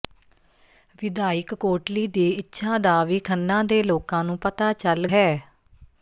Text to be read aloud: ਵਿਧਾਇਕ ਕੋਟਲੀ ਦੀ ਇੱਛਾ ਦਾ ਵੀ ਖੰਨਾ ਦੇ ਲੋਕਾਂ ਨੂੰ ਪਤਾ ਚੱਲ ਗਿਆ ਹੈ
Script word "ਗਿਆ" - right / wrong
wrong